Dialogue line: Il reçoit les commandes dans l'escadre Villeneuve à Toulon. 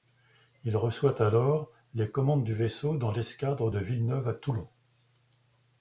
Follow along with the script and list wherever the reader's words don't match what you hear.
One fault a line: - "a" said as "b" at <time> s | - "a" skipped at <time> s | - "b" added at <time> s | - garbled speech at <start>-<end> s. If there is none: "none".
- "alors" added at 1.2 s
- "du vaisseau" added at 2.4 s
- "de" added at 3.7 s